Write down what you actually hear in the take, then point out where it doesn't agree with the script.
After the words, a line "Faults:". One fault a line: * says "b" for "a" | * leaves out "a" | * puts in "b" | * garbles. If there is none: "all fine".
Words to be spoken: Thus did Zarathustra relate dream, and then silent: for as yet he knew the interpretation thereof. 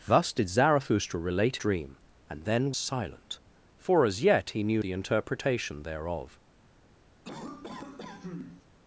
Thus did Zarathustra relate dream, and then silent: for as yet he knew the interpretation thereof.
Faults:
all fine